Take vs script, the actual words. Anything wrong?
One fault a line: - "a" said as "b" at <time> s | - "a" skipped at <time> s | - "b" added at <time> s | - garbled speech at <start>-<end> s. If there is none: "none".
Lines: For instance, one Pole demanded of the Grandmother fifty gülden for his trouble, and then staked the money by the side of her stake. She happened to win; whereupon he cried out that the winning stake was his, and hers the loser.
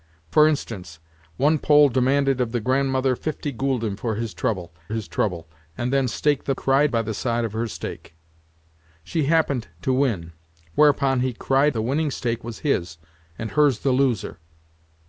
- "his trouble" added at 4.9 s
- "money" said as "cried" at 6.5 s
- "out that" skipped at 11.7 s